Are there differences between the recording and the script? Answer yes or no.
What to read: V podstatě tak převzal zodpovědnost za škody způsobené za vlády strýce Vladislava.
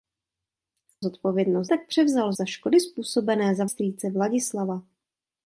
yes